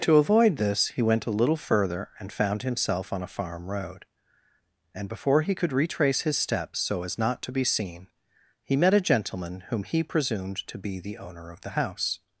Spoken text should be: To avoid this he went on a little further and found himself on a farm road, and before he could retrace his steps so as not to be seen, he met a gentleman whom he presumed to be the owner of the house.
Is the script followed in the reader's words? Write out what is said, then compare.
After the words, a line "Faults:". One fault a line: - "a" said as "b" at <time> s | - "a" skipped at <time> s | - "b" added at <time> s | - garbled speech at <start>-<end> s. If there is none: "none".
To avoid this he went a little further and found himself on a farm road, and before he could retrace his steps so as not to be seen, he met a gentleman whom he presumed to be the owner of the house.
Faults:
- "on" skipped at 1.3 s